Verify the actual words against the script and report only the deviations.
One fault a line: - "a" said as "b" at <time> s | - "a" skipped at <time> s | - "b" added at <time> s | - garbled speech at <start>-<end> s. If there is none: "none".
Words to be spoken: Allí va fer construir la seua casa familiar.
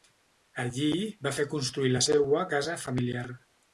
none